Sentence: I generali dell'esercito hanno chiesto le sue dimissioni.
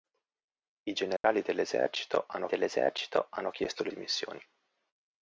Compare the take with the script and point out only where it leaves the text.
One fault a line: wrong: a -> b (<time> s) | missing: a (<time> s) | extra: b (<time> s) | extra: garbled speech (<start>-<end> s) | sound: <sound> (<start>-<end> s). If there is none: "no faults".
sound: dropout (1.2-1.2 s)
extra: dell'esercito hanno (2.5 s)
missing: sue (3.9 s)